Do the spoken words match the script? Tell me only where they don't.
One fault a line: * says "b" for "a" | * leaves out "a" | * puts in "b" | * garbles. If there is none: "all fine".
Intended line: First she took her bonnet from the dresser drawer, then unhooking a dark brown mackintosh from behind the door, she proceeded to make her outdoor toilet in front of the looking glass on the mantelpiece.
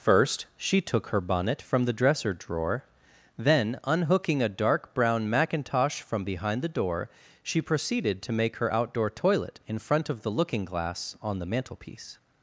all fine